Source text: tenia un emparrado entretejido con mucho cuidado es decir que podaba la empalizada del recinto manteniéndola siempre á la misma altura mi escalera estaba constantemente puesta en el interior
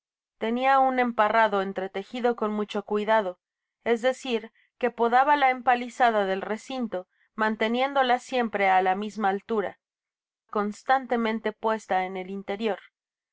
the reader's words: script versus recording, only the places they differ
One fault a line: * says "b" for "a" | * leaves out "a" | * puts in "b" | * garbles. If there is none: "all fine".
* leaves out "mi escalera estaba"